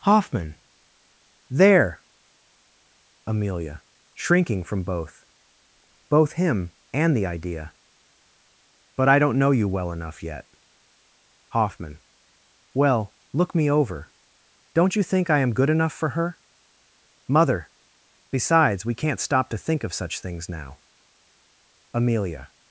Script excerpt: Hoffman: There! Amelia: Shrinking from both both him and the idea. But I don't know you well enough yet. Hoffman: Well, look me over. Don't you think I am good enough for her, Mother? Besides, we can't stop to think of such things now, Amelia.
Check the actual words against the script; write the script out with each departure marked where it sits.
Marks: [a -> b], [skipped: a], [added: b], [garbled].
Hoffman: There! Amelia: Shrinking from both both him and the idea. But I don't know you well enough yet. Hoffman: Well, look me over. Don't you think I am good enough for her, Mother? Besides, we can't stop to think of such things now, Amelia.